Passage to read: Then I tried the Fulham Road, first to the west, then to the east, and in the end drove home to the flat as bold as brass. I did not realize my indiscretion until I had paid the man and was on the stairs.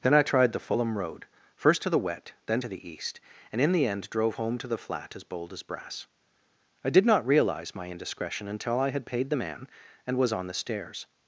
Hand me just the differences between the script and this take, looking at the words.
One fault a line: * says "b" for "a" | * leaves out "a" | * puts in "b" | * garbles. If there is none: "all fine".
* says "wet" for "west"